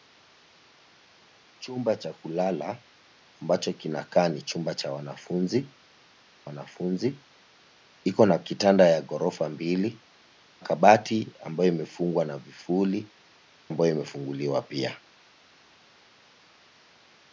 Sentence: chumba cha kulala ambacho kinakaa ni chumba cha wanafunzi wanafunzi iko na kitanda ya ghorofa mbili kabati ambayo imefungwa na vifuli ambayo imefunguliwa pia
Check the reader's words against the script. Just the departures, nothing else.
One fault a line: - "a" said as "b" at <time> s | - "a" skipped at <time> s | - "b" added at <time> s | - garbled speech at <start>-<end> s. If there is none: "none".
none